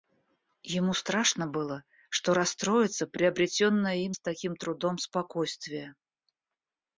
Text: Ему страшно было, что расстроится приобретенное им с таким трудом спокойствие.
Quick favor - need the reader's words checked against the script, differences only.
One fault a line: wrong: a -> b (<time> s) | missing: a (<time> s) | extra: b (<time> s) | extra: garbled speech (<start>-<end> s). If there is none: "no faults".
no faults